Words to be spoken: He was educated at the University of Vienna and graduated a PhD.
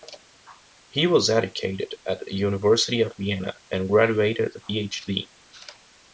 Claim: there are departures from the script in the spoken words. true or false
false